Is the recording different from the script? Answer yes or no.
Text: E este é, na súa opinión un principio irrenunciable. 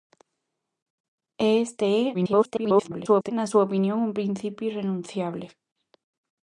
yes